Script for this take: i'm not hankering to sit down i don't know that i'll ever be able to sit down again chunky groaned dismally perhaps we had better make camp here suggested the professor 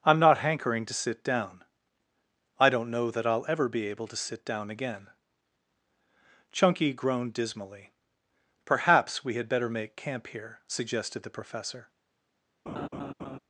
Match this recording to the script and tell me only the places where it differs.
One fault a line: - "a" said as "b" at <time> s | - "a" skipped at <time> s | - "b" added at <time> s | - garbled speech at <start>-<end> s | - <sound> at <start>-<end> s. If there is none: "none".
- laugh at 12.7-13.4 s